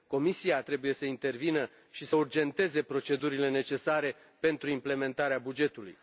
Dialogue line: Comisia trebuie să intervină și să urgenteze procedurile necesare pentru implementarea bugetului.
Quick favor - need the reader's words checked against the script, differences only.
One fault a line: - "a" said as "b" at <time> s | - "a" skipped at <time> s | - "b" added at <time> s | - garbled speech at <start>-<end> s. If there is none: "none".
none